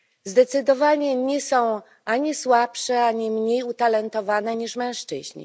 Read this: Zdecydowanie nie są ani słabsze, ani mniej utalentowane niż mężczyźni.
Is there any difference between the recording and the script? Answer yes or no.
no